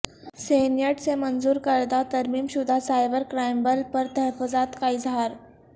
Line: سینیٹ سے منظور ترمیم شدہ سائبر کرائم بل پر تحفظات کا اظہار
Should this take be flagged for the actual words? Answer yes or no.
yes